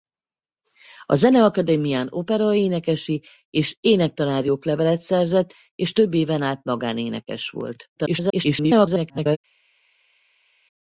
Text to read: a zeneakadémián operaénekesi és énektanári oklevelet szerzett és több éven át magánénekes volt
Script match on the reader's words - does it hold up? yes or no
no